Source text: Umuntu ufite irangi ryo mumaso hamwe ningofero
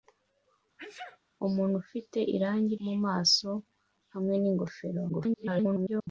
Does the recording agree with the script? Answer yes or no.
no